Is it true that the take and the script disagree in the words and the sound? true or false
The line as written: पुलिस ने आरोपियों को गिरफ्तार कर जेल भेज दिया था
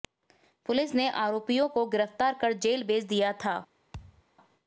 true